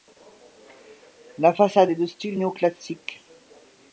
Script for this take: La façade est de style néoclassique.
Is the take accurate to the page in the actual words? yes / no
yes